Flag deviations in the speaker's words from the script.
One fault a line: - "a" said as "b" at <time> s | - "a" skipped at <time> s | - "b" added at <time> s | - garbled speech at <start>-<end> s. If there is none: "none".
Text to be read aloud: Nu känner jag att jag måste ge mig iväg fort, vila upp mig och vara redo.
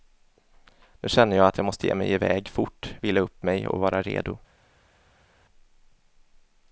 none